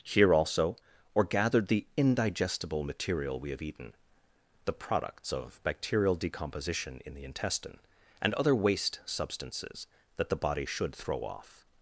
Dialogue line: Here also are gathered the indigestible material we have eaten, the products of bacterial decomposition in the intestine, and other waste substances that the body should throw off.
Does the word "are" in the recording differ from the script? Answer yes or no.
yes